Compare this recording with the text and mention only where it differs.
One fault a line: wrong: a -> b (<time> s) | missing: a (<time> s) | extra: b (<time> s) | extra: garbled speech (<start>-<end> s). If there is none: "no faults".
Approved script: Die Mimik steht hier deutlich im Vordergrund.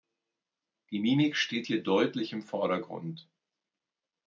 no faults